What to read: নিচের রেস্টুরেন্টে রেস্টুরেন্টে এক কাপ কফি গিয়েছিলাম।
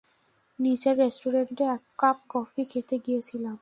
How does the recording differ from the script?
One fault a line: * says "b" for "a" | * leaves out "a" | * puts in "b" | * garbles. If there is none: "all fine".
* leaves out "রেস্টুরেন্টে"
* puts in "খেতে"